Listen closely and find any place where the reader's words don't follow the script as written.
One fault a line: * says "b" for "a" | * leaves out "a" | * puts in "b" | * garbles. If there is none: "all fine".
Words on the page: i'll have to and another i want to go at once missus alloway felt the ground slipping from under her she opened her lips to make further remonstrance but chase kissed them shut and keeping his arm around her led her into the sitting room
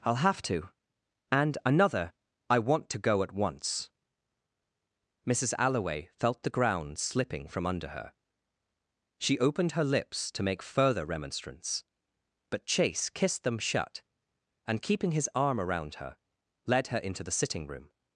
all fine